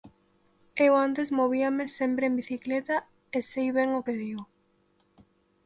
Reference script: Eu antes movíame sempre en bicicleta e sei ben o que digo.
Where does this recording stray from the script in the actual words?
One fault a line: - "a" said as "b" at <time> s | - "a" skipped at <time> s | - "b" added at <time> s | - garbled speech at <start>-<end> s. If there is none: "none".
none